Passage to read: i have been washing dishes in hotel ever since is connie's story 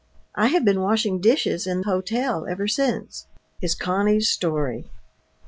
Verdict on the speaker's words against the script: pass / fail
pass